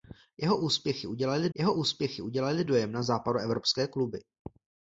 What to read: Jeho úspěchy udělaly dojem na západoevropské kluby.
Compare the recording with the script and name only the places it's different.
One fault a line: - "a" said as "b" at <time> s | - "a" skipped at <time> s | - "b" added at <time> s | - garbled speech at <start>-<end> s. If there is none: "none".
- "jeho úspěchy udělaly" added at 1.5 s